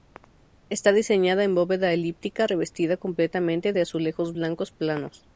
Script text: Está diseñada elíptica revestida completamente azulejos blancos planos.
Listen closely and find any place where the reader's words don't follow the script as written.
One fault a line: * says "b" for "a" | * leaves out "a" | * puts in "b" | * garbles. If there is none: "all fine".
* puts in "en bóveda"
* puts in "de"